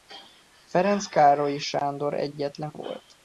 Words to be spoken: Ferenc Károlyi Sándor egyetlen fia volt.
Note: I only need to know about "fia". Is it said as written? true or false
false